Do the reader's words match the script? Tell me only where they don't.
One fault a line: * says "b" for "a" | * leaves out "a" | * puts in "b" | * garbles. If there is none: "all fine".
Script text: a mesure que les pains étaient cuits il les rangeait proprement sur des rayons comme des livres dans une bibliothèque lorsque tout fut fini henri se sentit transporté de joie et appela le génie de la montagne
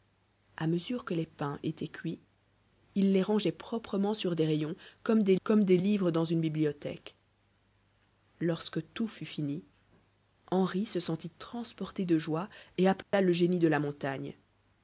* puts in "comme des"